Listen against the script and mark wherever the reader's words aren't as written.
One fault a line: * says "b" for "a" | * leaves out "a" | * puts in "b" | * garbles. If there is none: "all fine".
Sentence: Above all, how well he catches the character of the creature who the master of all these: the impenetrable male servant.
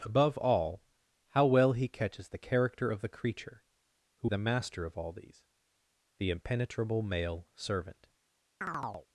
all fine